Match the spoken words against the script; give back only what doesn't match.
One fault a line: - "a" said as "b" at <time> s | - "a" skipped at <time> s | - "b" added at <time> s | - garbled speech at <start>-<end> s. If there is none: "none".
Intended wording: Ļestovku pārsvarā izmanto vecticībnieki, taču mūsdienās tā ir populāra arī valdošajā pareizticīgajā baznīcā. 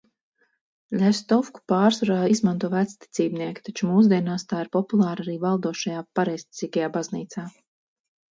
none